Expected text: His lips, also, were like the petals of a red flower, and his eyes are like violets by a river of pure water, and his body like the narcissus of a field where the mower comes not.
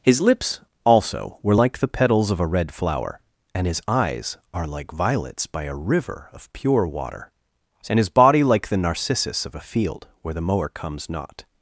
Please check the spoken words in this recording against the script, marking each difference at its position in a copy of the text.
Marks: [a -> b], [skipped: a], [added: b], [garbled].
His lips, also, were like the petals of a red flower, and his eyes are like violets by a river of pure water, and his body like the narcissus of a field where the mower comes not.